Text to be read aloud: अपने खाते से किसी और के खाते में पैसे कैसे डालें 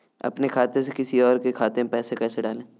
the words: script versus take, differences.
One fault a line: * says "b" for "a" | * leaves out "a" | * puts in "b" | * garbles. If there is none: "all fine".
all fine